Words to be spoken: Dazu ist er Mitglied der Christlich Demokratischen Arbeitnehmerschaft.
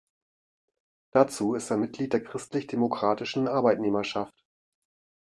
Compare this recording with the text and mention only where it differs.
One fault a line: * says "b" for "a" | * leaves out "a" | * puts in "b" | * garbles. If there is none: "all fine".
all fine